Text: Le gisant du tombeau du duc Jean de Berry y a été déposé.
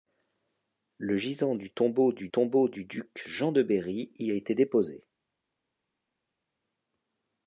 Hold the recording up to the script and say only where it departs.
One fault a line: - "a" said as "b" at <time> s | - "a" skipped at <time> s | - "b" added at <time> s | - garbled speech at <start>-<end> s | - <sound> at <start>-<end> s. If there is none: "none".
- "tombeau du" added at 2.3 s